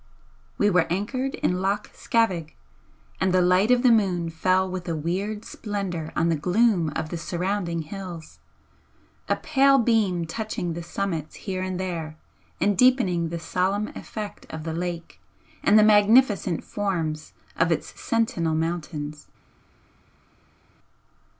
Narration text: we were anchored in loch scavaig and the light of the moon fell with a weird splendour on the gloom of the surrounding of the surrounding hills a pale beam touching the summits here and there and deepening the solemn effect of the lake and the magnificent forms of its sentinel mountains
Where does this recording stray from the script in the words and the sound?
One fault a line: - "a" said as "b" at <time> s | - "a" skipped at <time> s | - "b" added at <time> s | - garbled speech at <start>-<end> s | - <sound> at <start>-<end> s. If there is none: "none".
- "of the surrounding" skipped at 7.8 s